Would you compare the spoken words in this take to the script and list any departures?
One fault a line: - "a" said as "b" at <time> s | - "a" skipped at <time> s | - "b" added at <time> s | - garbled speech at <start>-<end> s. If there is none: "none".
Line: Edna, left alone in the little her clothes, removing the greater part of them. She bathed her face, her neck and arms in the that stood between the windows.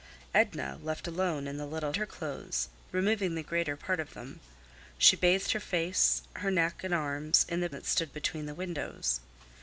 none